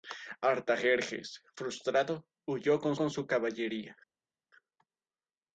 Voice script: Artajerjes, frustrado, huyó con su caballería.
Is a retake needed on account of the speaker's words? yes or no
yes